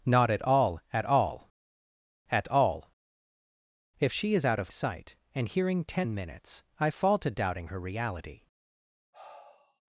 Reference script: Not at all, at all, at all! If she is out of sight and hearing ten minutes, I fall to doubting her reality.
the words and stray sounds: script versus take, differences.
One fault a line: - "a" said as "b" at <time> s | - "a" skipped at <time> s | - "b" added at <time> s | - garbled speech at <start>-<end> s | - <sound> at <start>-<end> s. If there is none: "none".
- sigh at 9.1-9.8 s